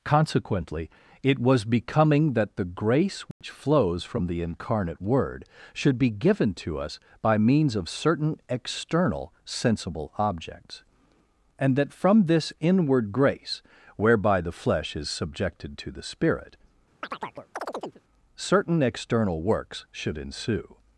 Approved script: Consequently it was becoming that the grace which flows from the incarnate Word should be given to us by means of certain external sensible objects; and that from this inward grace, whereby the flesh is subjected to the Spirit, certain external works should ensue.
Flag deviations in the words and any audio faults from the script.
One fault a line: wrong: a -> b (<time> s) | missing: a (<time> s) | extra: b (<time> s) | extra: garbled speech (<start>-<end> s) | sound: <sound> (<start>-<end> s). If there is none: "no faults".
sound: dropout (3.3-3.4 s)
sound: chirp (17.0-18.0 s)